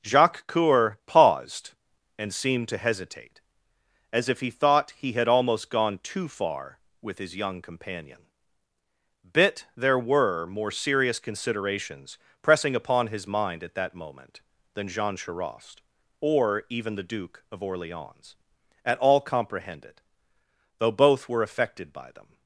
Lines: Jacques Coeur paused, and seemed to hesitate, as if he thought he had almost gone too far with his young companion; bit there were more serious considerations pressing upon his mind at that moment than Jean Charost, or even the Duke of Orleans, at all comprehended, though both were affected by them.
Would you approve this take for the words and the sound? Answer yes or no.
yes